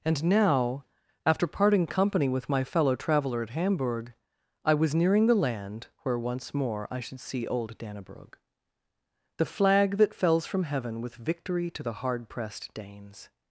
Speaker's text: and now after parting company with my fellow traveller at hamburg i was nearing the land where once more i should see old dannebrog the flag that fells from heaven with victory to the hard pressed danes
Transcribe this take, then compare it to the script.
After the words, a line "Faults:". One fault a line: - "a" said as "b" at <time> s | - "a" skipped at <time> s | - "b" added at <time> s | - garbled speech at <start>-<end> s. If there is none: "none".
and now after parting company with my fellow traveller at hamburg i was nearing the land where once more i should see old dannebrog the flag that fells from heaven with victory to the hard pressed danes
Faults:
none